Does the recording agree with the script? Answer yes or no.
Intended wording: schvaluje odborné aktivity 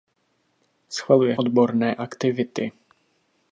yes